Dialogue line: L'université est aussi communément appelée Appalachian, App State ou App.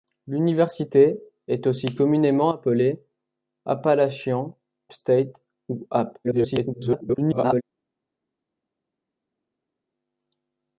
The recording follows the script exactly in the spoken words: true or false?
false